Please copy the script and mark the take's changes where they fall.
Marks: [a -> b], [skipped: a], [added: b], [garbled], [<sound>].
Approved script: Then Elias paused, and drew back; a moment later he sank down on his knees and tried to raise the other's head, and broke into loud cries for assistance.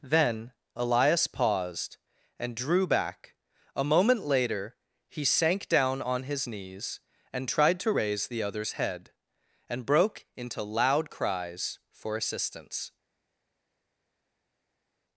Then Elias paused, and drew back; a moment later he sank down on his knees and tried to raise the other's head, and broke into loud cries for assistance.